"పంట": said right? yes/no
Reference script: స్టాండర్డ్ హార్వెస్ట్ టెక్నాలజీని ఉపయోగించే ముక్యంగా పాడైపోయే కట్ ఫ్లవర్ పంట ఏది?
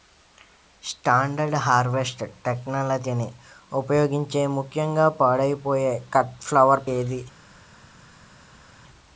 no